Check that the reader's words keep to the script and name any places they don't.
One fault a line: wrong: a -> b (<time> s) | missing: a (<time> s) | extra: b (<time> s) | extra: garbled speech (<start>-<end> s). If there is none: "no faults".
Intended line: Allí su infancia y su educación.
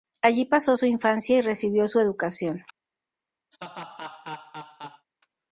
extra: pasó (0.5 s)
extra: recibió (1.4 s)